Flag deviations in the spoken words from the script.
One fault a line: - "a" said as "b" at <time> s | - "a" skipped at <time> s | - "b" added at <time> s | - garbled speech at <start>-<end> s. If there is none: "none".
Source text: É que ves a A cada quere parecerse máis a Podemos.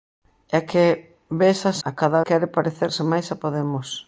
none